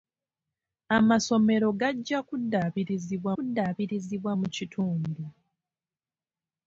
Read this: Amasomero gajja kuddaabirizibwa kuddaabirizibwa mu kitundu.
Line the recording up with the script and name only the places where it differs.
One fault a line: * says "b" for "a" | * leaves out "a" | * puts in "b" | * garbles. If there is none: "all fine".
all fine